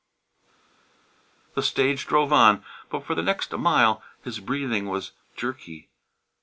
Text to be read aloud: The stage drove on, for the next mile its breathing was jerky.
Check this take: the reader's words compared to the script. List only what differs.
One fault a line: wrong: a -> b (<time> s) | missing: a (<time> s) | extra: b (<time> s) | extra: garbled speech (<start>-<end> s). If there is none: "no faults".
extra: but (2.9 s)
wrong: its -> his (4.2 s)